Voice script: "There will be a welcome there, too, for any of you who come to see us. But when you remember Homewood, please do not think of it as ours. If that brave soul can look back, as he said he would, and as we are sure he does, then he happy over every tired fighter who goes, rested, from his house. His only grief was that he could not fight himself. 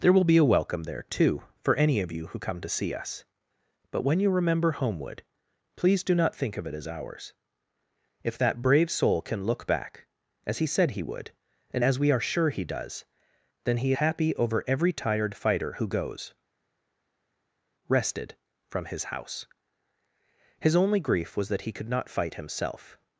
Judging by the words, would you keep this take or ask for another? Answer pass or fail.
pass